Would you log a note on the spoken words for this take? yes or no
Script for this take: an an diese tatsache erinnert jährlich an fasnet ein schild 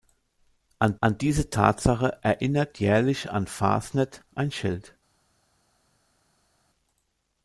no